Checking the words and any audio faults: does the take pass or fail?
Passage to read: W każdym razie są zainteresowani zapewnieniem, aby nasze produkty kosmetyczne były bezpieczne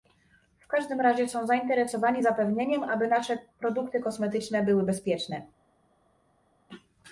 pass